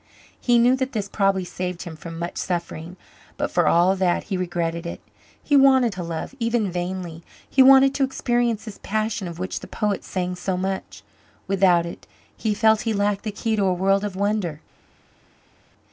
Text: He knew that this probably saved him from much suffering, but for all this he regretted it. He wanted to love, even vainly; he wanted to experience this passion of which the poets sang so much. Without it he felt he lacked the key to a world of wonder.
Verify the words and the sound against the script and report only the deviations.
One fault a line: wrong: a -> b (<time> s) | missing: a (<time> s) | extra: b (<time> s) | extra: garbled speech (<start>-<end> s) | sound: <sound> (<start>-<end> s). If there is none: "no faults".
wrong: this -> that (4.0 s)